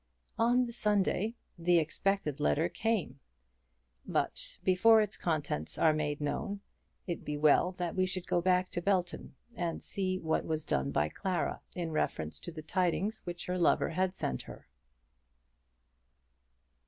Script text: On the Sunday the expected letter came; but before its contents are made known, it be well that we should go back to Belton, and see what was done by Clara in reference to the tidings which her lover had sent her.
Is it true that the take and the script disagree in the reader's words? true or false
false